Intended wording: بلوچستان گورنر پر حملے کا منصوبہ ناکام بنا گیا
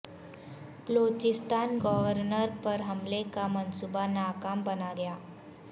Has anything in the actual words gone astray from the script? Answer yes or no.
no